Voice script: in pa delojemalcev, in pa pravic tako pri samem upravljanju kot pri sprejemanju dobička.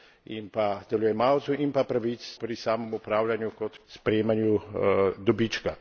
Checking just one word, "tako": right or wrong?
wrong